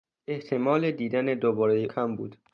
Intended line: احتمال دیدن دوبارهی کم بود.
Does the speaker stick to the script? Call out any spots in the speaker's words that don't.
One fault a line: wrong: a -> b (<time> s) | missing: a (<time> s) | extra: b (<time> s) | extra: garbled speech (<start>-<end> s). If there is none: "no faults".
no faults